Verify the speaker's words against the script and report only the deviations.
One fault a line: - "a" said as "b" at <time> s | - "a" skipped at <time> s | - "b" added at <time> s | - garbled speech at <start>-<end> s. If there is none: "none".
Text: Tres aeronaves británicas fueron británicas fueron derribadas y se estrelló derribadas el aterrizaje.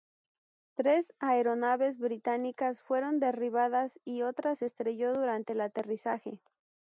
- "británicas fueron" skipped at 3.2 s
- "otra" added at 4.2 s
- "derribadas" said as "durante" at 5.1 s